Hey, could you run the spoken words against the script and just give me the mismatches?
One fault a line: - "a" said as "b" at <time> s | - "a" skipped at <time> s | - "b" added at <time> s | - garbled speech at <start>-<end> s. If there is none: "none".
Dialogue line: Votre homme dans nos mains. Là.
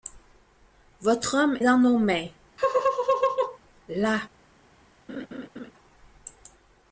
none